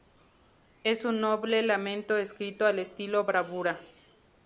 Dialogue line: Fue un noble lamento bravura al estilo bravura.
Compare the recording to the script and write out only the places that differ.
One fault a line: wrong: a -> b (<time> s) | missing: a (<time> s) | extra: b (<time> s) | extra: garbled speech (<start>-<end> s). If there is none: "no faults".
wrong: Fue -> Es (0.8 s)
wrong: bravura -> escrito (2.2 s)